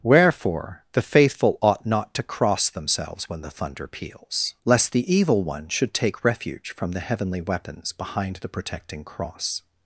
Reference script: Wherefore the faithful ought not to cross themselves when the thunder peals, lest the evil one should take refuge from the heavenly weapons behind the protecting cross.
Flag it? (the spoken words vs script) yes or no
no